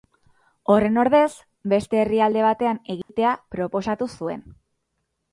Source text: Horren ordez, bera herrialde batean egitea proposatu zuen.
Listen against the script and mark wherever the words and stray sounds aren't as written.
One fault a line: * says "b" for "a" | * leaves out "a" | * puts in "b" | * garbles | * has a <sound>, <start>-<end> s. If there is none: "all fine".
* says "beste" for "bera"
* has a dropout, 3.0-3.1 s